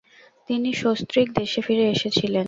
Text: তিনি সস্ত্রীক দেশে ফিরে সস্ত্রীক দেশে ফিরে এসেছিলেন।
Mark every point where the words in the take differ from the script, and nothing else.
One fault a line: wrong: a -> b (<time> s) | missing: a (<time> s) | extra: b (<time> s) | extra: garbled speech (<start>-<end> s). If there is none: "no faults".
missing: সস্ত্রীক দেশে ফিরে (1.8 s)